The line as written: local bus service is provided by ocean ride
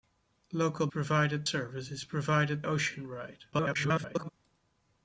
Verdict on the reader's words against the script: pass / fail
fail